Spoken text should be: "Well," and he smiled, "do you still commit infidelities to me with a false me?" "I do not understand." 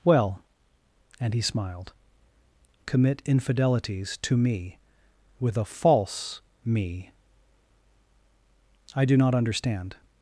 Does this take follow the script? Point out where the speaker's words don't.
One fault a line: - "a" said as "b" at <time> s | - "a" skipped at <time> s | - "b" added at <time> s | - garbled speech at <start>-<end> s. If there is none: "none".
- "do you still" skipped at 1.9 s